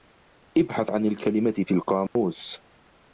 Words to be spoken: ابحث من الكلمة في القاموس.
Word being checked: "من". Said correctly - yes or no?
no